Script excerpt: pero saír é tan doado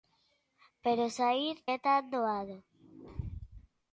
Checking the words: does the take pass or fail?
pass